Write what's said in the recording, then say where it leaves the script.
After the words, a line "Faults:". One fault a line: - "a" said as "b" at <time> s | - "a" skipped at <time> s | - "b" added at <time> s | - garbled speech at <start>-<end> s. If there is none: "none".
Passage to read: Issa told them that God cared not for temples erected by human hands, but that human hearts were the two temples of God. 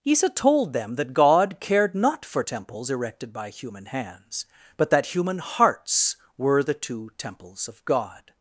Issa told them that God cared not for temples erected by human hands, but that human hearts were the two temples of God.
Faults:
none